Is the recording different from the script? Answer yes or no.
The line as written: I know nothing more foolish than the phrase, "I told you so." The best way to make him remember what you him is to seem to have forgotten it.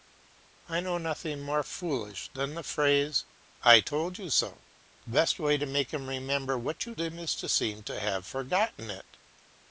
no